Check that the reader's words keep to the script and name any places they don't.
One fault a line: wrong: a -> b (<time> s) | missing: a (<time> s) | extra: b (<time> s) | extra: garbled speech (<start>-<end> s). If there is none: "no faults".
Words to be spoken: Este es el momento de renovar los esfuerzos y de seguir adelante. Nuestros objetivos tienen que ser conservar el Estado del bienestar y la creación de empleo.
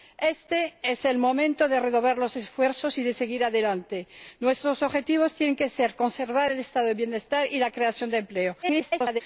extra: garbled speech (8.6-9.2 s)